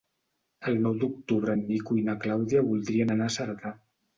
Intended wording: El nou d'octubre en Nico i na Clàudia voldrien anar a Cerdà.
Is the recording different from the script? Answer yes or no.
no